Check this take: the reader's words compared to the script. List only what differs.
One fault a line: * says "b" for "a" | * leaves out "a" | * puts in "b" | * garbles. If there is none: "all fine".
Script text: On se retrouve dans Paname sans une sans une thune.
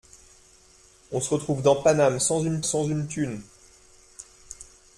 all fine